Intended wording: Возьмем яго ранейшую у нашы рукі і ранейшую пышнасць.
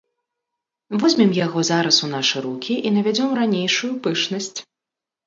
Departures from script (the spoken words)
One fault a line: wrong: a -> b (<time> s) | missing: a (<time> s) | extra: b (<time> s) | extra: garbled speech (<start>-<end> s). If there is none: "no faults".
wrong: ранейшую -> зараз (1.7 s)
extra: навядзём (3.0 s)